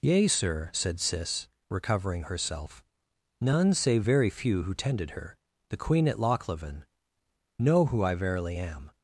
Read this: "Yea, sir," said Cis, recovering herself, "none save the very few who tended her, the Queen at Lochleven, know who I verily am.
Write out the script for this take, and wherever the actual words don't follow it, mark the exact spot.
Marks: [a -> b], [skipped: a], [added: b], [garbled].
"Yea, sir," said Cis, recovering herself, "none save [skipped: the] very few who tended her, the Queen at Lochleven, know who I verily am.